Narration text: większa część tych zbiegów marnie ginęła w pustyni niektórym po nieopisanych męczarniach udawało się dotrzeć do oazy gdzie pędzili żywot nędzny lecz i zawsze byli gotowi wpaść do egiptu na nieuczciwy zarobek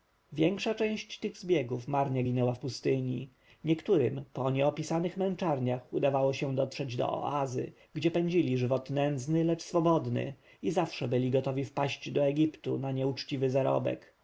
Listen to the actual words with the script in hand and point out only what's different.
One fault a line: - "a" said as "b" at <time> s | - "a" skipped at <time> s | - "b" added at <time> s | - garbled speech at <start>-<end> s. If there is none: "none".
- "swobodny" added at 9.6 s